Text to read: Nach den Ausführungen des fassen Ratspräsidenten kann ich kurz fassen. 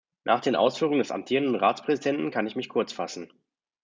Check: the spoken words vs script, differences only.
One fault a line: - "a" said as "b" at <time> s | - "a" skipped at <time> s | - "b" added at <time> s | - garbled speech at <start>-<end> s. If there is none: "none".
- "fassen" said as "amtierenden" at 1.1 s
- "mich" added at 2.5 s